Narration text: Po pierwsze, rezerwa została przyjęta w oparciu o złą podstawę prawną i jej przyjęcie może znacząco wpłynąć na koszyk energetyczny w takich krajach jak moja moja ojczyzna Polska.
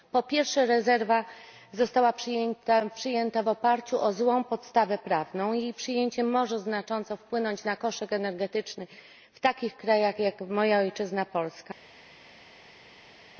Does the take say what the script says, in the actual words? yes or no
no